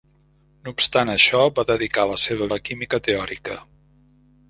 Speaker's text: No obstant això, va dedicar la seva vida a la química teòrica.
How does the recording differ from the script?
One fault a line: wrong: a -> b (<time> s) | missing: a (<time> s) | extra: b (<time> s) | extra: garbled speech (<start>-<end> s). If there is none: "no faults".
missing: vida a (2.5 s)